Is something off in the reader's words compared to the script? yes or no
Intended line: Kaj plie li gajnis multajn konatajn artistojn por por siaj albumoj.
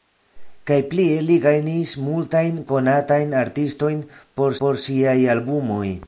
no